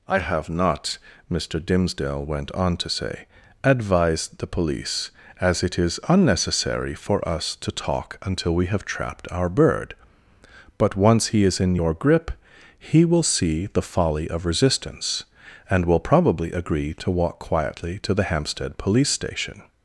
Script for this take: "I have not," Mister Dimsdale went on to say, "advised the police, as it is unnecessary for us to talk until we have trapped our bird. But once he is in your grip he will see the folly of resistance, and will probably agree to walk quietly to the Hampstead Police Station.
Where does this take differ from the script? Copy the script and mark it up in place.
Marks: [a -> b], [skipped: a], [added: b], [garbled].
"I have not," Mister Dimsdale went on to say, "advised the police, as it is unnecessary for us to talk until we have trapped our bird. But once he is in your grip he will see the folly of resistance, and will probably agree to walk quietly to the Hampstead Police Station.